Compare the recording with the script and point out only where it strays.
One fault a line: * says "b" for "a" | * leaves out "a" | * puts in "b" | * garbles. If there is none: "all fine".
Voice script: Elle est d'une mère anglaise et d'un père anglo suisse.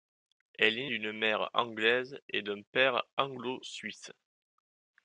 all fine